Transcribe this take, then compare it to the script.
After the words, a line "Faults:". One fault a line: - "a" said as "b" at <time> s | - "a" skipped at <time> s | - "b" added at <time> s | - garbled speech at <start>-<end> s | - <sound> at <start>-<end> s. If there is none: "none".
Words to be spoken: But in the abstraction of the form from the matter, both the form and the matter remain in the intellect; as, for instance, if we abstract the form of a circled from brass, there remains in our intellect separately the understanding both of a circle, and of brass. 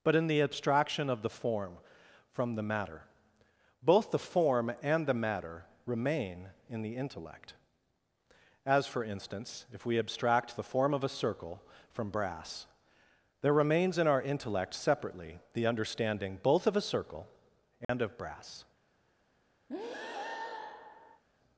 But in the abstraction of the form from the matter, both the form and the matter remain in the intellect; as, for instance, if we abstract the form of a circle from brass, there remains in our intellect separately the understanding both of a circle, and of brass.
Faults:
- "circled" said as "circle" at 11.1 s
- dropout at 17.8-17.9 s
- breath at 19.7-21.2 s